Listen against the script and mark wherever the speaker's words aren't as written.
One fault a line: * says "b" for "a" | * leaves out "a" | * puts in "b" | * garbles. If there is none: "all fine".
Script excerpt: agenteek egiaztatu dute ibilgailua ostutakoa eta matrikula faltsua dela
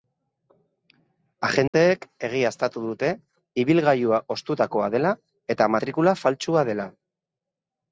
* puts in "dela"